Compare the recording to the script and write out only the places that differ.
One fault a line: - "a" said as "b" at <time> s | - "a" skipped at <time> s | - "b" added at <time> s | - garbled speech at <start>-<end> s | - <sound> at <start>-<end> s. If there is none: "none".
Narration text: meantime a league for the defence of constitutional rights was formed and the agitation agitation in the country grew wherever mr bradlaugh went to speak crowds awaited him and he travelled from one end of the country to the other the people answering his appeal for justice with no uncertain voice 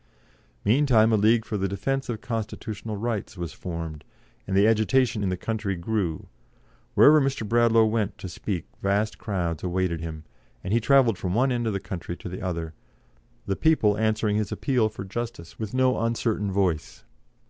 - "agitation" skipped at 5.2 s
- "vast" added at 8.8 s